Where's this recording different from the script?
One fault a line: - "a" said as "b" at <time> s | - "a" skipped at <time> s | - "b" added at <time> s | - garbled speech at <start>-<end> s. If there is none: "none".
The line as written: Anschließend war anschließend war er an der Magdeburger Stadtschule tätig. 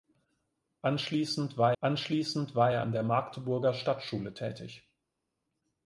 none